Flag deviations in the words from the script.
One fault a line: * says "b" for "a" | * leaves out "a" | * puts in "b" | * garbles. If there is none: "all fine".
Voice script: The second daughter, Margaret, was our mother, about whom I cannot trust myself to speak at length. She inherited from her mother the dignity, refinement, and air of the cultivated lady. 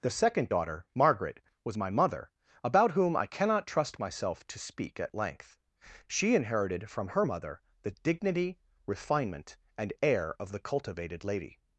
* says "my" for "our"